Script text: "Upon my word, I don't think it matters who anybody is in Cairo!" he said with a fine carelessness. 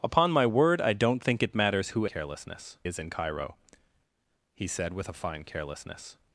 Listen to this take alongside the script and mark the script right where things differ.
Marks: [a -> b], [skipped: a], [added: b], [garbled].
"Upon my word, I don't think it matters who [anybody -> carelessness] is in Cairo!" he said with a fine carelessness.